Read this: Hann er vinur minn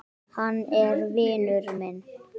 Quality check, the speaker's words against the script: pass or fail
pass